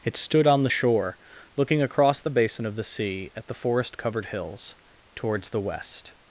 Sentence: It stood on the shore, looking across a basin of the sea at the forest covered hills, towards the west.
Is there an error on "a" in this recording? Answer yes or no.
yes